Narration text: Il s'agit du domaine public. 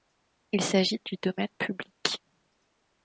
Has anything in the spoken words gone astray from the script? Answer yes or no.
no